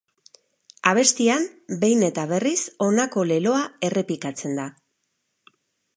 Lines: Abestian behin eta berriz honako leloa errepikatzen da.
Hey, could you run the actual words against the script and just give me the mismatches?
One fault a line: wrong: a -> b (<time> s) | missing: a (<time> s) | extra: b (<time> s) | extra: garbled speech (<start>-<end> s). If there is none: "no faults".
no faults